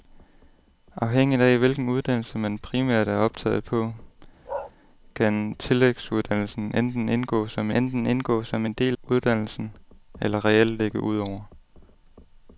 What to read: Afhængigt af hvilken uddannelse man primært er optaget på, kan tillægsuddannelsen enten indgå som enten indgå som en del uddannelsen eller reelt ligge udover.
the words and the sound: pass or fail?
fail